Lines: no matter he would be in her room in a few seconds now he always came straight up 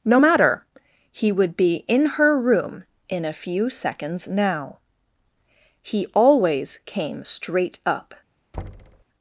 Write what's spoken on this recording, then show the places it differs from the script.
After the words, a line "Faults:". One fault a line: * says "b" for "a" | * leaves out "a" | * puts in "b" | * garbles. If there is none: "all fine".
no matter he would be in her room in a few seconds now he always came straight up
Faults:
all fine